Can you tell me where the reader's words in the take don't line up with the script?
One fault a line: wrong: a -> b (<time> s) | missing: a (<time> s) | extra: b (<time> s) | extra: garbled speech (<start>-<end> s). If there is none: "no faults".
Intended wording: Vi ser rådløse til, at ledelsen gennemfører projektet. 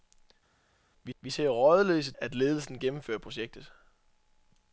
extra: vi (1.2 s)
missing: til (2.1 s)